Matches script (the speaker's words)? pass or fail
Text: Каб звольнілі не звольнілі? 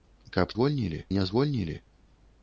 pass